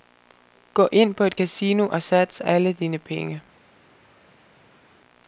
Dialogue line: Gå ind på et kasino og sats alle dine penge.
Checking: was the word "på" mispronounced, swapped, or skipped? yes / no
no